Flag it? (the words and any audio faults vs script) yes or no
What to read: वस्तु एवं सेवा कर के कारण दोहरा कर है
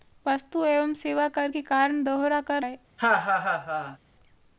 yes